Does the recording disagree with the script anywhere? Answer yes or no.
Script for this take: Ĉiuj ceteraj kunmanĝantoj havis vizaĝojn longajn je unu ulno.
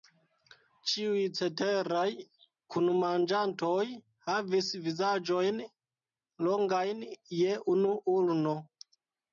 no